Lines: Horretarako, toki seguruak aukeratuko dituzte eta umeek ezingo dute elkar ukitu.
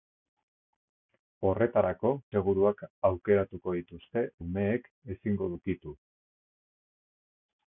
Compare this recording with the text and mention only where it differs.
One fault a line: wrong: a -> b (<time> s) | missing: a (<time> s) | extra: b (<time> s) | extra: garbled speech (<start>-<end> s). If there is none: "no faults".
missing: toki (2.1 s)
missing: eta (4.3 s)
missing: dute elkar (5.5 s)